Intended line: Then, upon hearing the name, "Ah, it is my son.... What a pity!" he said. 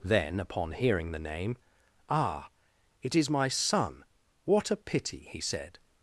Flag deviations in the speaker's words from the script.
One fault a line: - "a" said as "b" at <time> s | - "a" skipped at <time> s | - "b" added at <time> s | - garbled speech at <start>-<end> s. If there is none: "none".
none